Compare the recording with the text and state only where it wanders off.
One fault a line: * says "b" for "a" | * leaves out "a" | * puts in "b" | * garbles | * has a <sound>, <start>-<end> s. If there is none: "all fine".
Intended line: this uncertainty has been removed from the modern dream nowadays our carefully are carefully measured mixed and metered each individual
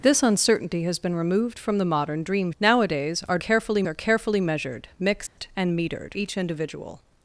* has a dropout, 5.3-5.4 s